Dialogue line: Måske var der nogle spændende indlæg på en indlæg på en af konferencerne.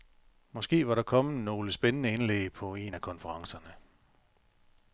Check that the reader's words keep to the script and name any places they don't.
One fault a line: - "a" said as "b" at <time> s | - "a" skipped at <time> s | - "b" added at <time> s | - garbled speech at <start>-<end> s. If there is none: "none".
- "kommet" added at 1.0 s
- "indlæg på en" skipped at 3.0 s